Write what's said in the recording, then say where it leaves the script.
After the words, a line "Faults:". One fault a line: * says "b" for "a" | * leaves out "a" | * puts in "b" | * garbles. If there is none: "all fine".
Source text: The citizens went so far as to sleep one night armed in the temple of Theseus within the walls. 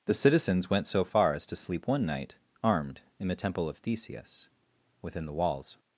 The citizens went so far as to sleep one night armed in the temple of Theseus within the walls.
Faults:
all fine